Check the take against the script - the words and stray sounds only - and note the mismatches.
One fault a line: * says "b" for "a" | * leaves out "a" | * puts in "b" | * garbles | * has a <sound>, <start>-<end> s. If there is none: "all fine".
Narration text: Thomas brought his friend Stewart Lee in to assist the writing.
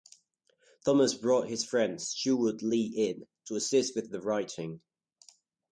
* puts in "with"